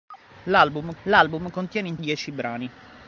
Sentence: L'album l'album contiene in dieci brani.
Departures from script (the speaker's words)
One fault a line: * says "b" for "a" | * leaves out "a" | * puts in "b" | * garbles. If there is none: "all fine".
all fine